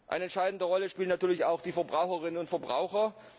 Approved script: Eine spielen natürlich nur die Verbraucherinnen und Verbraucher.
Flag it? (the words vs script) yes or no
yes